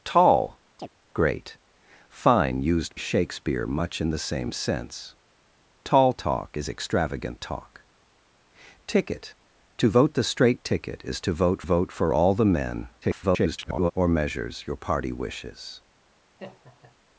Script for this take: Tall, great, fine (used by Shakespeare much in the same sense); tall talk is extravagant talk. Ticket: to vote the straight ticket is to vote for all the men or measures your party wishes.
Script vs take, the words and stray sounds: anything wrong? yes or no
yes